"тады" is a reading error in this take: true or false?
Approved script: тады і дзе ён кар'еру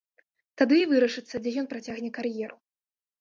false